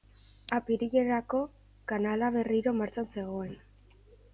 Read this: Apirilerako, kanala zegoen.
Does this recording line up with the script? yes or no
no